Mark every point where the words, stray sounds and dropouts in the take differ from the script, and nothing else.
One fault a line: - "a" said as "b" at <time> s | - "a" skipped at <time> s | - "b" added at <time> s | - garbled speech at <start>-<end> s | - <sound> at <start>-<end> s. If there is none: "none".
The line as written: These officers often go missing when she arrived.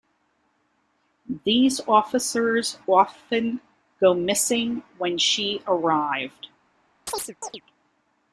- chirp at 7.1-7.6 s